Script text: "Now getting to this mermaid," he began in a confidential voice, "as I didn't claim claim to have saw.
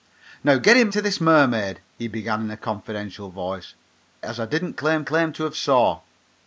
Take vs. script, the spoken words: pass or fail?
pass